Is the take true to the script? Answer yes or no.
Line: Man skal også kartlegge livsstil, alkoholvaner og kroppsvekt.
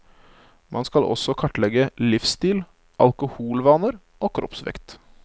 yes